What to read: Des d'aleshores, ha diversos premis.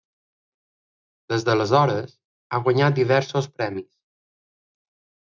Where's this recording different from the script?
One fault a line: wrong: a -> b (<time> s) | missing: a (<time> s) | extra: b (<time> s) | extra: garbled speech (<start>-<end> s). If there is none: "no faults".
extra: guanyat (2.7 s)